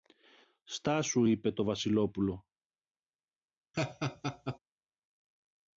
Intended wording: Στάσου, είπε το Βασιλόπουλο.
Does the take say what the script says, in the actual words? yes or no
yes